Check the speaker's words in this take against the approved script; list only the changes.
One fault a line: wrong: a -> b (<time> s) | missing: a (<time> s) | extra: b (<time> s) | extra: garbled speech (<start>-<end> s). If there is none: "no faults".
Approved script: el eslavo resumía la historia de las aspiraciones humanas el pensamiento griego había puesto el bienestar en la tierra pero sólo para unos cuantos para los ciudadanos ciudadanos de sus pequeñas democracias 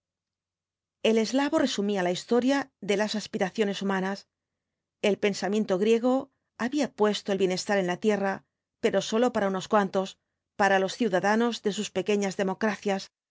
missing: ciudadanos (11.6 s)